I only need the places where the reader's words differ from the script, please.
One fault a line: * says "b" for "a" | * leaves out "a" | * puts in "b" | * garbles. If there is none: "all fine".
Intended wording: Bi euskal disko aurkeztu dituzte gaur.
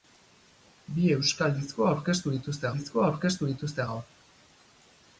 * puts in "disko aurkeztu dituzte"